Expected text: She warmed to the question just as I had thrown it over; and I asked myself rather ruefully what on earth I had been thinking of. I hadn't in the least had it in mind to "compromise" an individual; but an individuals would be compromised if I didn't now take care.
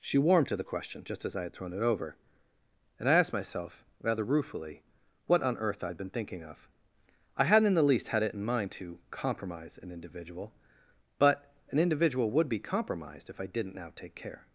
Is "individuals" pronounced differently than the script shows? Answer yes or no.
yes